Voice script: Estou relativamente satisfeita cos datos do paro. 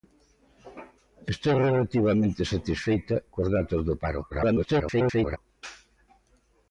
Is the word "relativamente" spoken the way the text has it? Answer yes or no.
yes